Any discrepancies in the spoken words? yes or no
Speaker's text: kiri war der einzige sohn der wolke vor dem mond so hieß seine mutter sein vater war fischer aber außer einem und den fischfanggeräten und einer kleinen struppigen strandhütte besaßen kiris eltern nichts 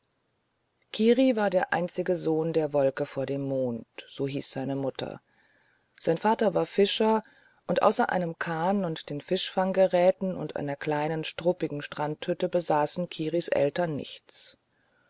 yes